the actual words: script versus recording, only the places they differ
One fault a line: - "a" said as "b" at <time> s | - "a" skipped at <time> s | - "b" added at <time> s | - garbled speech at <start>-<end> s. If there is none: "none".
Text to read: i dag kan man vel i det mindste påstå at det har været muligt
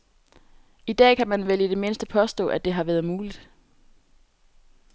none